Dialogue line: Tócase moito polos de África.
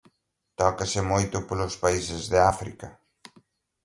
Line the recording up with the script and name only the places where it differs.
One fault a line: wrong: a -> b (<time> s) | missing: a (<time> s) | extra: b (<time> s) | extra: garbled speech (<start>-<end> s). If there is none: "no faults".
extra: países (1.8 s)